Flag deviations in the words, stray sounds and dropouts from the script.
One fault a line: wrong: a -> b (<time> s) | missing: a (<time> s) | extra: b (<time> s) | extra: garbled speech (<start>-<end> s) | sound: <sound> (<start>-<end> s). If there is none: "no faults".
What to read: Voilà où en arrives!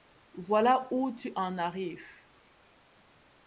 extra: tu (1.1 s)